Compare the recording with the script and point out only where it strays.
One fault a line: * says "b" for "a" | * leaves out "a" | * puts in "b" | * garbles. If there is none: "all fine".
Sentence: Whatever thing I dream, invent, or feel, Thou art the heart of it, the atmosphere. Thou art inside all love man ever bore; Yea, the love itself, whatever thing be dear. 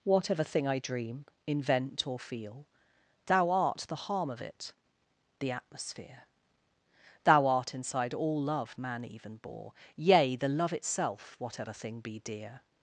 * says "harm" for "heart"
* says "even" for "ever"